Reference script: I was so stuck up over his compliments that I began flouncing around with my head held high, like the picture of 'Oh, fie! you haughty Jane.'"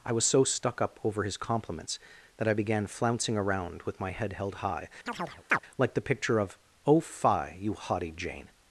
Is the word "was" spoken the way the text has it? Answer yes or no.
yes